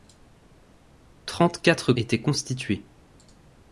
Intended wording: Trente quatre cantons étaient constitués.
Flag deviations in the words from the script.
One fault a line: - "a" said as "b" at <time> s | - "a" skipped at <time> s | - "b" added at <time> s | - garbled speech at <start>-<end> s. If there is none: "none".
- "cantons" skipped at 1.9 s